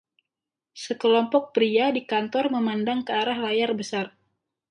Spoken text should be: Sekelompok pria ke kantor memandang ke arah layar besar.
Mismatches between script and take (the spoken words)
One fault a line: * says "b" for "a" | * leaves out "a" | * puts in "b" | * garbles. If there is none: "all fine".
* says "di" for "ke"